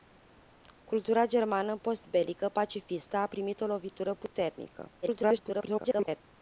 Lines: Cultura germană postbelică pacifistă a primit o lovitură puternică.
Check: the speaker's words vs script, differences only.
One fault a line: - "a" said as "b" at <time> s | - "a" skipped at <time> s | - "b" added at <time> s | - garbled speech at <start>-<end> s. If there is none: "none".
- garbled speech at 5.0-6.2 s